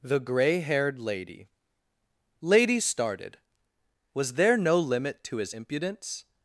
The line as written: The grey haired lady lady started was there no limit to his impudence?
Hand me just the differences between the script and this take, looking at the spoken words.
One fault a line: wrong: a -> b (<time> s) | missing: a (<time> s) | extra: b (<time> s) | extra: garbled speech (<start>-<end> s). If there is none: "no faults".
no faults